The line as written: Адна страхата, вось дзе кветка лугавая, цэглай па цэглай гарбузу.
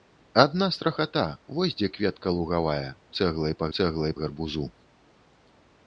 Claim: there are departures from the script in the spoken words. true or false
false